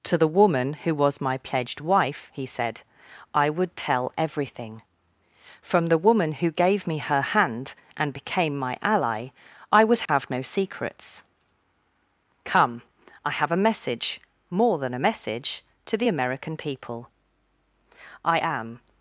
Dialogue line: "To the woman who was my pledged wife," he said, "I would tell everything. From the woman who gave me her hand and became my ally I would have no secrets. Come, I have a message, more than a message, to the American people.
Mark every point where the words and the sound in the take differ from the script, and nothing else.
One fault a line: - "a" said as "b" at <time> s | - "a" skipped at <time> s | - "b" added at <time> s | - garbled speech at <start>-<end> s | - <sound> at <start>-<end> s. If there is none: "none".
- dropout at 10.1-10.1 s
- "I am" added at 18.2 s